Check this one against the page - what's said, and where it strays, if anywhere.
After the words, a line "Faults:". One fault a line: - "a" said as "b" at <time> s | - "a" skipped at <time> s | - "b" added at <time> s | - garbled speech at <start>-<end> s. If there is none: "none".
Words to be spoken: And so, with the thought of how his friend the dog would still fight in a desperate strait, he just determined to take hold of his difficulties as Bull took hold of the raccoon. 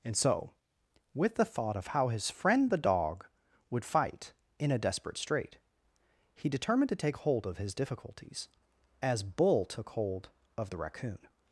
And so, with the thought of how his friend the dog would fight in a desperate strait, he determined to take hold of his difficulties as Bull took hold of the raccoon.
Faults:
- "still" skipped at 3.9 s
- "just" skipped at 6.5 s